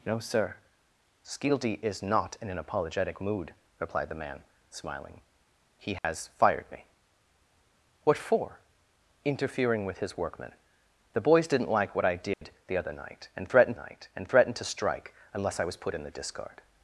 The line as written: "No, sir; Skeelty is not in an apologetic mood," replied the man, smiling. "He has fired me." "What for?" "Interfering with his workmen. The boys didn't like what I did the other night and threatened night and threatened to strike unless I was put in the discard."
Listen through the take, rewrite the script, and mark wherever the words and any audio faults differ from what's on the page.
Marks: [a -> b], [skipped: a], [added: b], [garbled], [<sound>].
"No, sir; Skeelty is not in an apologetic mood," replied the man, smiling. "He has [dropout] fired me." "What for?" "Interfering with his workmen. The boys didn't like what I did [dropout] the other night and threatened night and threatened to strike unless I was put in the discard."